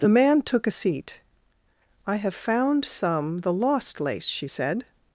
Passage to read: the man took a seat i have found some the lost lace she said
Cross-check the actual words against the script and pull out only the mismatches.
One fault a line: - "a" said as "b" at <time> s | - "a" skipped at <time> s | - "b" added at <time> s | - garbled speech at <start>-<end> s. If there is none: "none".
none